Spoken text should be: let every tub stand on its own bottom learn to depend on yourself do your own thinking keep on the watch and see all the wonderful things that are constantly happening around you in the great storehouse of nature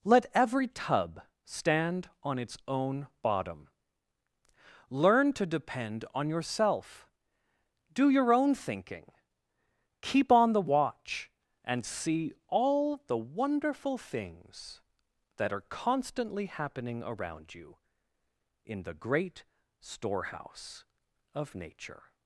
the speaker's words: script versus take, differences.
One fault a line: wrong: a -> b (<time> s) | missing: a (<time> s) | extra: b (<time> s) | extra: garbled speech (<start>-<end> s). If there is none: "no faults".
no faults